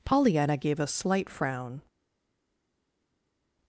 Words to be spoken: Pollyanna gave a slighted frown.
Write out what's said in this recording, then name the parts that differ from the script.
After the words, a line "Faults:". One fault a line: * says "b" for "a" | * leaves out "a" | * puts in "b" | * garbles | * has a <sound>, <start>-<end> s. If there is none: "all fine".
Pollyanna gave a slight frown.
Faults:
* says "slight" for "slighted"